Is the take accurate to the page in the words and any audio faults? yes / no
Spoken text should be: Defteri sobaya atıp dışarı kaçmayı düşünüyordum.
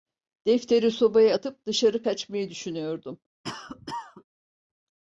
no